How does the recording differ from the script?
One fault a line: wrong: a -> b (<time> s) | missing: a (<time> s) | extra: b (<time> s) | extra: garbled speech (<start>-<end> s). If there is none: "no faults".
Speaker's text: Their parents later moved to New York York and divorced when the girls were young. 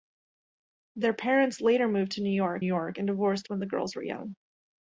no faults